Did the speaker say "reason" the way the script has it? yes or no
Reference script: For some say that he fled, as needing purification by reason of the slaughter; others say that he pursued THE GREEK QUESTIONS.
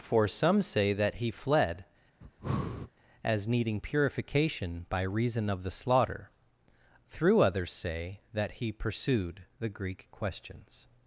yes